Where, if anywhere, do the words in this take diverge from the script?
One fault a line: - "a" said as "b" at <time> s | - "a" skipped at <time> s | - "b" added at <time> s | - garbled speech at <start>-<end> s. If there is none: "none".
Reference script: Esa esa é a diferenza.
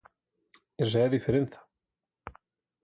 - "esa" skipped at 1.0 s